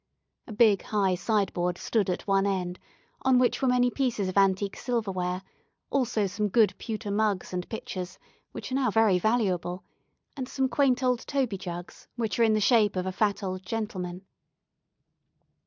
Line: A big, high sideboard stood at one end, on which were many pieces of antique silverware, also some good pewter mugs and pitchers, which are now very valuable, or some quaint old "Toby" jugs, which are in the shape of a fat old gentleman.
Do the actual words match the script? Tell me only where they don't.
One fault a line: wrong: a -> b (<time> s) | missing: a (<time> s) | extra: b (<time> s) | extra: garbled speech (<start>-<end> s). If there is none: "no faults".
wrong: or -> and (10.3 s)